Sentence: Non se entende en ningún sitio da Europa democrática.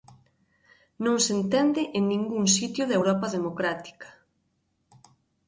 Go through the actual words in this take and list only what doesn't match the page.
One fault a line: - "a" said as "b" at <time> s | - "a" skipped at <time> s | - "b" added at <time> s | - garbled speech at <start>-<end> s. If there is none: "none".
none